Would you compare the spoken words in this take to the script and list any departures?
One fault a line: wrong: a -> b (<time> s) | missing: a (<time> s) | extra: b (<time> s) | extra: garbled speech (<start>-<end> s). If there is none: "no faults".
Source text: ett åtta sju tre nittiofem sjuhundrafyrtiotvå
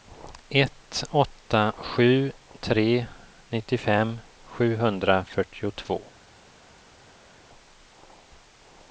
no faults